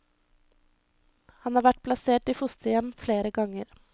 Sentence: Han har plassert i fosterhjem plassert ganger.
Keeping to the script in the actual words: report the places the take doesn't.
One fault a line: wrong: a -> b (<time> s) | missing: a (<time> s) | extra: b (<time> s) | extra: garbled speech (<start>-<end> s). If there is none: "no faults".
extra: vært (1.6 s)
wrong: plassert -> flere (3.0 s)